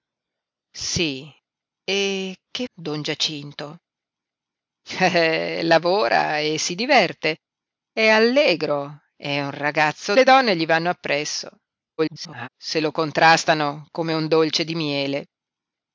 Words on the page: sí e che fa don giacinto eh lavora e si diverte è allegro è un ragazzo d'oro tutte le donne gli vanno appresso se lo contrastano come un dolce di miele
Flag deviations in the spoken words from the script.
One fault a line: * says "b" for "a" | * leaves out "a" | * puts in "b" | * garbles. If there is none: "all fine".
* leaves out "fa"
* leaves out "d'oro tutte"
* garbles